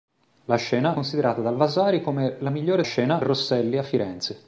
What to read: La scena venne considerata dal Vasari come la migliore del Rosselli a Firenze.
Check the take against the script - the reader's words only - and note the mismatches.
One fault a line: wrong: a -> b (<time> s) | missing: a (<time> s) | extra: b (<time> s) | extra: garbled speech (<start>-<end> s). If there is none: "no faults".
missing: venne (0.9 s)
wrong: del -> scena (2.8 s)